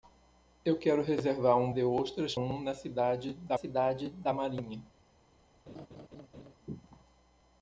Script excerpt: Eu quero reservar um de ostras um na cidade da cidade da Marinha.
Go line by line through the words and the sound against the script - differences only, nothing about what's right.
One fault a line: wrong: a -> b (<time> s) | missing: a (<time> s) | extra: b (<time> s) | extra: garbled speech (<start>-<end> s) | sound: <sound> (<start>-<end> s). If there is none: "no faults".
sound: laugh (5.7-6.6 s)